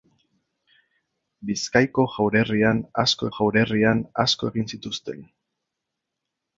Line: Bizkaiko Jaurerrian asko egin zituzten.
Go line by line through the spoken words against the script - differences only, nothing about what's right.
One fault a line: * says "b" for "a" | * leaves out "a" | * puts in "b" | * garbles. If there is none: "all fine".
* puts in "Jaurerrian asko"